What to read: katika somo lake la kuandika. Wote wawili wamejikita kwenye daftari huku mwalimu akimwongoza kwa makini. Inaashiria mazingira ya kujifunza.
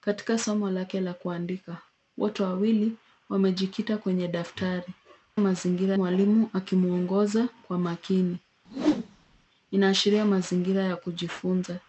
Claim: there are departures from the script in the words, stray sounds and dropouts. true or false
true